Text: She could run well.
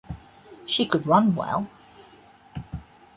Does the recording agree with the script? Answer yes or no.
yes